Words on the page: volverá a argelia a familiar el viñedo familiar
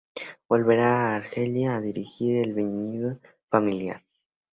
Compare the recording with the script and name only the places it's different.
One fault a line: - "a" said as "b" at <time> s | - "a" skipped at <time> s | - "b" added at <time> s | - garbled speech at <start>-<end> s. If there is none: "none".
- "familiar" said as "dirigir" at 1.8 s